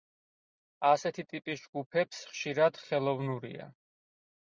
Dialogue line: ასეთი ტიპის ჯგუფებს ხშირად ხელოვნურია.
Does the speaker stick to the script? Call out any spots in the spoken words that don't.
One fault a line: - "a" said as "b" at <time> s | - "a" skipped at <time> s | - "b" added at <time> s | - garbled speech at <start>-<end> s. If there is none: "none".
none